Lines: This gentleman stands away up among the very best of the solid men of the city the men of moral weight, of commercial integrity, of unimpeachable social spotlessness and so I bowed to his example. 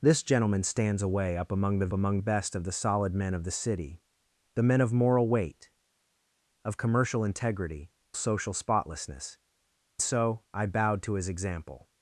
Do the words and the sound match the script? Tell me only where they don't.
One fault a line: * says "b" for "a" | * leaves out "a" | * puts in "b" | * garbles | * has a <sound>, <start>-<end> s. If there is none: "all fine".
* says "among" for "very"
* leaves out "of unimpeachable"
* leaves out "and"